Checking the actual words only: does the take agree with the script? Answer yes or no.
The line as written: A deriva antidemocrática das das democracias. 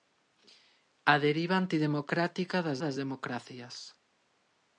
yes